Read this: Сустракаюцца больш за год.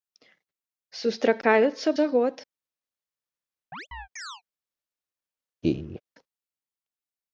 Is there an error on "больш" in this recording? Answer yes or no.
yes